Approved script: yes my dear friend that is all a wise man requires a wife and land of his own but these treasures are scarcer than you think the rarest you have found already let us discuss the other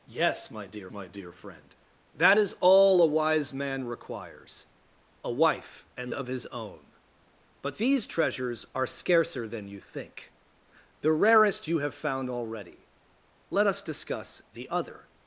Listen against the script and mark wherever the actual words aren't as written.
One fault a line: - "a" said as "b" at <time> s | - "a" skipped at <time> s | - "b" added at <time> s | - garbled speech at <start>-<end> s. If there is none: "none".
- "my dear" added at 0.9 s
- "land" skipped at 6.1 s